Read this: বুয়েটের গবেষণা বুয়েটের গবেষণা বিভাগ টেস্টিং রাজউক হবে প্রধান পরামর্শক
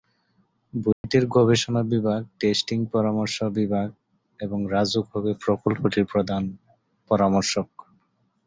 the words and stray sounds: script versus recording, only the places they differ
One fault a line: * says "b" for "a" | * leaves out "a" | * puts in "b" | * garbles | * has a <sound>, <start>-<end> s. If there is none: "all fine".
* has a dropout, 0.9-1.0 s
* says "বিভাগ টেস্টিং পরামর্শ" for "বুয়েটের গবেষণা"
* says "এবং" for "টেস্টিং"
* puts in "প্রকল্পটির"